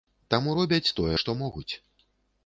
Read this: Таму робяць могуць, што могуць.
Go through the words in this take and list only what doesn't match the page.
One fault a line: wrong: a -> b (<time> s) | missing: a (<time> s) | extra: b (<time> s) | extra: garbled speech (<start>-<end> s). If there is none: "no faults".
wrong: могуць -> тое (1.0 s)